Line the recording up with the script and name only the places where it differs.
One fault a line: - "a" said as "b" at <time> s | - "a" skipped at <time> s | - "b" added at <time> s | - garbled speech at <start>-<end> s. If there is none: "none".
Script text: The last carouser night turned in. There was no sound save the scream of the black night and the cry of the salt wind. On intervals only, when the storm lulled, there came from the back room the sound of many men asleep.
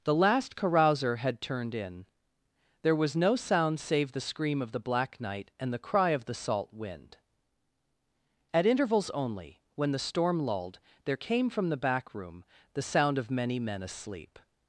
- "night" said as "had" at 1.2 s
- "On" said as "At" at 8.5 s